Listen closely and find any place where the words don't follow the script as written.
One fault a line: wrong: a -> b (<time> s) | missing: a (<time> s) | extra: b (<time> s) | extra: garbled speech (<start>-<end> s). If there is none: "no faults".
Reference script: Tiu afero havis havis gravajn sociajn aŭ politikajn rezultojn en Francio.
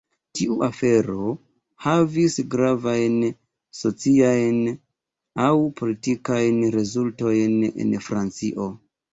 missing: havis (2.4 s)